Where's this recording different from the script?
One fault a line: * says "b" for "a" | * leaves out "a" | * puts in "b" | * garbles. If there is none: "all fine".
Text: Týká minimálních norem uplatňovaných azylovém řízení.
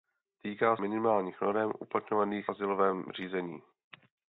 all fine